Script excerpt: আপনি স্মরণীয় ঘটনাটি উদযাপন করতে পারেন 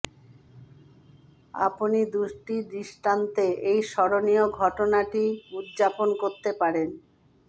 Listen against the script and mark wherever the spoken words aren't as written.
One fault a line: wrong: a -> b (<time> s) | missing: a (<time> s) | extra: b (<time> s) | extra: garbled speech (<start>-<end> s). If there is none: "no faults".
extra: দুটি দৃষ্টান্তে এই (2.1 s)